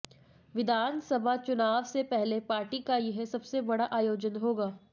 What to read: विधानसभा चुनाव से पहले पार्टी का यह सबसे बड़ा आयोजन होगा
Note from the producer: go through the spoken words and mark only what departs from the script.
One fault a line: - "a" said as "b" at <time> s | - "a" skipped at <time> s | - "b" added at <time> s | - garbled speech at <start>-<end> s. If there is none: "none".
none